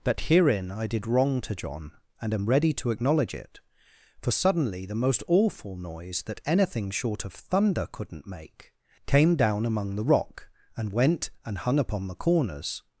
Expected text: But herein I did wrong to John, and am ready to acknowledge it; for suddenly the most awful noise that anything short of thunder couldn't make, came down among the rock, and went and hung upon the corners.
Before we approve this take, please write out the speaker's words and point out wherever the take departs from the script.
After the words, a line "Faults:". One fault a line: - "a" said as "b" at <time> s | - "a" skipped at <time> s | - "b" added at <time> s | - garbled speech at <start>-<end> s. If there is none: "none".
But herein I did wrong to John, and am ready to acknowledge it; for suddenly the most awful noise that anything short of thunder couldn't make, came down among the rock, and went and hung upon the corners.
Faults:
none